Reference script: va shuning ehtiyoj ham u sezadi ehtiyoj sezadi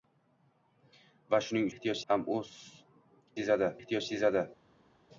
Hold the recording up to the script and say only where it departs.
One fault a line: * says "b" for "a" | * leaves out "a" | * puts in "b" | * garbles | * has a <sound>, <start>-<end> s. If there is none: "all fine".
all fine